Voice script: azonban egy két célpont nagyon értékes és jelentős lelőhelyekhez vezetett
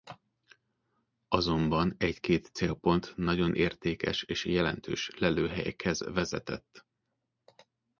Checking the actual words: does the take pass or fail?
pass